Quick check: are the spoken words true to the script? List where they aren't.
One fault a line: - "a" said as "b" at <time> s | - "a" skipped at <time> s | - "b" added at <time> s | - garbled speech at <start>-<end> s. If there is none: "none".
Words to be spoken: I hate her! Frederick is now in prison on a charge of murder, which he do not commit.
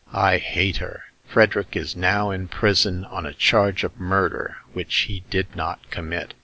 - "do" said as "did" at 5.3 s